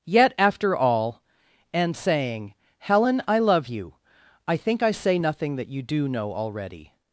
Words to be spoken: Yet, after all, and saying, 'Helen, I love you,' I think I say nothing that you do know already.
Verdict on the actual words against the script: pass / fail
pass